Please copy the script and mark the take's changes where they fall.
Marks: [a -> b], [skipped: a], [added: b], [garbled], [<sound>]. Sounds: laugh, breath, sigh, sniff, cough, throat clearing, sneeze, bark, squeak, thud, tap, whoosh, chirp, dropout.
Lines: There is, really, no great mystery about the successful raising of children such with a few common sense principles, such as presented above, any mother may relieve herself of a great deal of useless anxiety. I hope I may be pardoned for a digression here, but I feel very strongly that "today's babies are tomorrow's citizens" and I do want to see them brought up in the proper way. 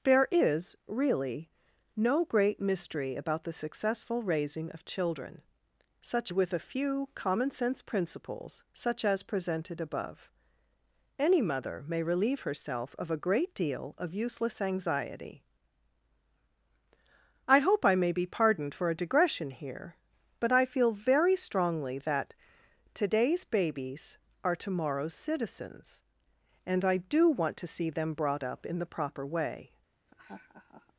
There is, really, no great mystery about the successful raising of children such with a few common sense principles, such as presented above, any mother may relieve herself of a great deal of useless anxiety. I hope I may be pardoned for a digression here, but I feel very strongly that "today's babies are tomorrow's citizens" and I do want to see them brought up in the proper way. [laugh]